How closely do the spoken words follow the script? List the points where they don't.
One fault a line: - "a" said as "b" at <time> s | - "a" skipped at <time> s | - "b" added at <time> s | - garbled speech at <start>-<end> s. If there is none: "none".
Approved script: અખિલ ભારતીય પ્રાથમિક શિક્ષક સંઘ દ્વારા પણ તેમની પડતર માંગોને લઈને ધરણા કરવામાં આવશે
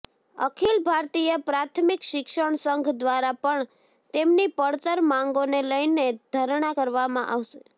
none